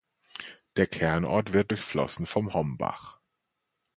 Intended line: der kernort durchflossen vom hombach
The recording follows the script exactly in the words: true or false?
false